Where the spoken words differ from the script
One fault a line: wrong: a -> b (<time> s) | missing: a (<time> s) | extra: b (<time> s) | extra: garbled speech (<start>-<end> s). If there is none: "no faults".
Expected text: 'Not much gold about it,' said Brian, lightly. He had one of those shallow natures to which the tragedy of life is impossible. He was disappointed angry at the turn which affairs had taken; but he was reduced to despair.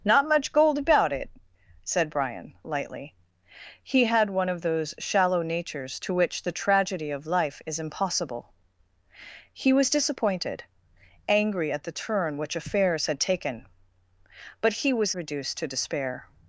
no faults